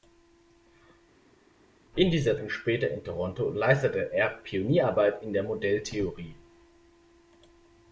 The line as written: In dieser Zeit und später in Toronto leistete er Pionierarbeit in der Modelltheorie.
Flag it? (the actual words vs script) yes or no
yes